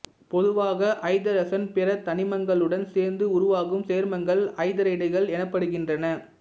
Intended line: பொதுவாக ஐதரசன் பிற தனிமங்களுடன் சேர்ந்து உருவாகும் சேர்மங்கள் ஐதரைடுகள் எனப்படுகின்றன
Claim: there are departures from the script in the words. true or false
false